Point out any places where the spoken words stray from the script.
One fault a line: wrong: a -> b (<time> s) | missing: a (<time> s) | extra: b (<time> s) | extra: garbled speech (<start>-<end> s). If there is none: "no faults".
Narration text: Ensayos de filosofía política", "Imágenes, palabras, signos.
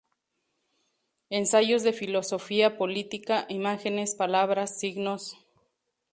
no faults